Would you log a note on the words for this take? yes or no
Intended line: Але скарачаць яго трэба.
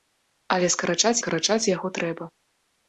yes